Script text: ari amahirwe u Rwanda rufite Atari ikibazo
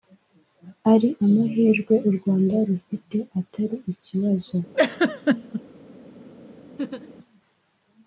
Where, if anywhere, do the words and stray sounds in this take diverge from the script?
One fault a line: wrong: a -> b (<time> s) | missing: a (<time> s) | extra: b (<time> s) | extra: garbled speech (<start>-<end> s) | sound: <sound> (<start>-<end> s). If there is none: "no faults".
sound: laugh (4.7-5.6 s)
sound: laugh (6.8-7.2 s)